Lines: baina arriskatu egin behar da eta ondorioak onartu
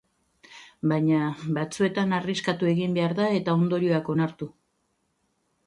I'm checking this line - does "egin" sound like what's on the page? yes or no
yes